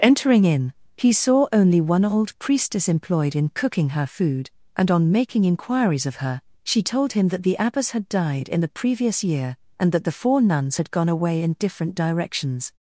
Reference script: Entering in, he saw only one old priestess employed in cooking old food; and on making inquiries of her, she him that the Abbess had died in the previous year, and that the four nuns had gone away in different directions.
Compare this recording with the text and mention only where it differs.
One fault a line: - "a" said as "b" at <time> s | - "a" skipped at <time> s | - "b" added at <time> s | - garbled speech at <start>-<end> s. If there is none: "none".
- "old" said as "her" at 3.9 s
- "told" added at 6.8 s